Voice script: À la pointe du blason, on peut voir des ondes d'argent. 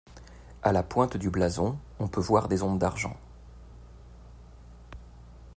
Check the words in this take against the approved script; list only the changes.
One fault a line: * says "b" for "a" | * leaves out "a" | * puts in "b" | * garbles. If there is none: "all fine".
all fine